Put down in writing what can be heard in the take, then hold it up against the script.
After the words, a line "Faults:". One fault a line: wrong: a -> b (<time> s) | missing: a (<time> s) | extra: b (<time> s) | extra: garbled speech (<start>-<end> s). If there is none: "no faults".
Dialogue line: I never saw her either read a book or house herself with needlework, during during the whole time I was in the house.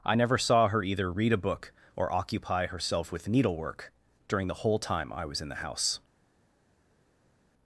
I never saw her either read a book or occupy herself with needlework, during the whole time I was in the house.
Faults:
wrong: house -> occupy (2.1 s)
missing: during (4.5 s)